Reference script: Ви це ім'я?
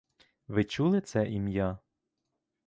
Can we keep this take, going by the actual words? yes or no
no